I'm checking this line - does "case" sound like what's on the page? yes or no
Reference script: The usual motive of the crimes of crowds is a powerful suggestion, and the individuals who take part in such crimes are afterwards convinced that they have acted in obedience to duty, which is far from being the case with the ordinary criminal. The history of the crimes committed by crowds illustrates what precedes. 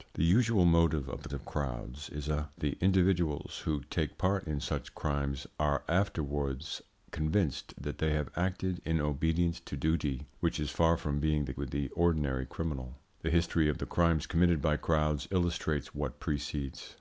no